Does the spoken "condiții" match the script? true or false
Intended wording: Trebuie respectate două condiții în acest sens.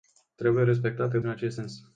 false